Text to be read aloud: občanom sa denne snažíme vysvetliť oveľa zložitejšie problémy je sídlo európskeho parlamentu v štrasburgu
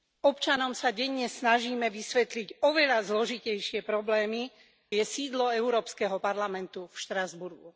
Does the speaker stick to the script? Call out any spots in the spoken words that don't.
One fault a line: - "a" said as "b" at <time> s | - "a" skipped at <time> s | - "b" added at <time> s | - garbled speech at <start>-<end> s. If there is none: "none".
none